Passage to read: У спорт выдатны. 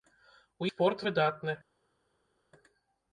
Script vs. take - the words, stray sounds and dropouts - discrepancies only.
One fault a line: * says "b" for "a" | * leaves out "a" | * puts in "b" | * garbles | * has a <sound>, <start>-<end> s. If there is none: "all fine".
all fine